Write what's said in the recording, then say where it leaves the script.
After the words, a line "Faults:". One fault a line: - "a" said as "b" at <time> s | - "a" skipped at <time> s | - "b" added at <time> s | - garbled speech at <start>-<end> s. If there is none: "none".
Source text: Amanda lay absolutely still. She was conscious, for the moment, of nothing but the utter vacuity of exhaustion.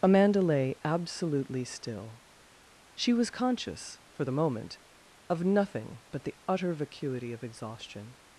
Amanda lay absolutely still. She was conscious, for the moment, of nothing but the utter vacuity of exhaustion.
Faults:
none